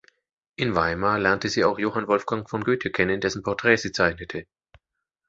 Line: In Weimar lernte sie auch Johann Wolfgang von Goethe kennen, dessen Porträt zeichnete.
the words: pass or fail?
fail